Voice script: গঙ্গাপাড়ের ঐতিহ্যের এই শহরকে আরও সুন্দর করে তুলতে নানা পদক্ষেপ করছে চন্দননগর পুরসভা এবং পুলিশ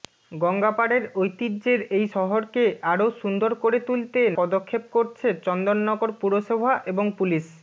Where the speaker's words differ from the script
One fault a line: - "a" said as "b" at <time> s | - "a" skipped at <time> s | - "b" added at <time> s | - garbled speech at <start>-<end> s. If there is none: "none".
- "নানা" skipped at 4.2 s